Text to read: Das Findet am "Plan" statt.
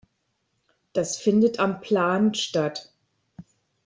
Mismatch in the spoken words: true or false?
false